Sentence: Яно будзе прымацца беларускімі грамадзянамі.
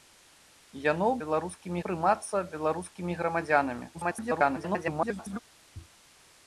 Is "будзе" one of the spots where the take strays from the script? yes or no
yes